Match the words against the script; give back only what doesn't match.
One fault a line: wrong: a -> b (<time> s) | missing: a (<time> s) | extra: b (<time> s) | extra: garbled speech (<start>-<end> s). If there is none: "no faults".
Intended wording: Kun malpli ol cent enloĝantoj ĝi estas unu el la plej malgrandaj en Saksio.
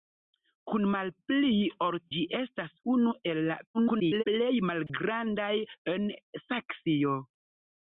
missing: cent enloĝantoj (2.0 s)
extra: garbled speech (3.7-4.2 s)